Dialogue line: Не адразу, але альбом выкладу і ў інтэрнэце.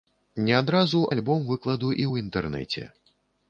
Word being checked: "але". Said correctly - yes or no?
no